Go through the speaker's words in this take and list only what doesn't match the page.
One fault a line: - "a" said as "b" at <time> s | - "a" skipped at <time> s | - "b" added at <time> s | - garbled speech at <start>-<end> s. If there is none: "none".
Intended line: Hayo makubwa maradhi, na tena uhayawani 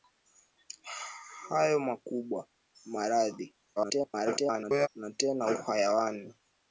- garbled speech at 3.8-4.9 s